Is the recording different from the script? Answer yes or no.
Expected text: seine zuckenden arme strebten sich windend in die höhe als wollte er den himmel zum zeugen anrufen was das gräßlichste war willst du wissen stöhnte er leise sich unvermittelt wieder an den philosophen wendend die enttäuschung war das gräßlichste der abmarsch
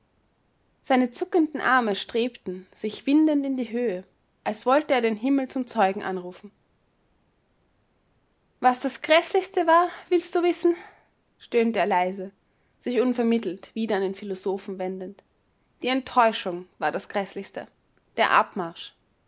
no